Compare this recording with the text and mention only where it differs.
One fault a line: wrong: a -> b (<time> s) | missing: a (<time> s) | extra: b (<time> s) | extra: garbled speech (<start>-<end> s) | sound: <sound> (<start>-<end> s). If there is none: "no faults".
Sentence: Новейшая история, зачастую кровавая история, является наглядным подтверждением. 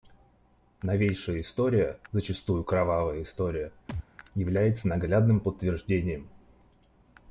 sound: thud (3.9-4.1 s)